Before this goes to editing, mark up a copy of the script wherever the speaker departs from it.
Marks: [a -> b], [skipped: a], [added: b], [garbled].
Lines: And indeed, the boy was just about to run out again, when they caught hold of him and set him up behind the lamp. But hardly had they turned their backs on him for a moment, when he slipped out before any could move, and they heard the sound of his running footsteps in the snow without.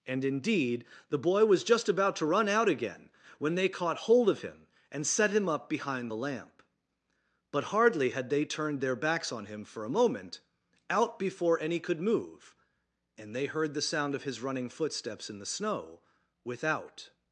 And indeed, the boy was just about to run out again, when they caught hold of him and set him up behind the lamp. But hardly had they turned their backs on him for a moment, [skipped: when he slipped] out before any could move, and they heard the sound of his running footsteps in the snow without.